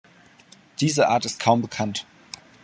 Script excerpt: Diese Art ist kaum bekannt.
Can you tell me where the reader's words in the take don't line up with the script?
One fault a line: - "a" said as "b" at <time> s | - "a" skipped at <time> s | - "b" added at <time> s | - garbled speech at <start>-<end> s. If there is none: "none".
none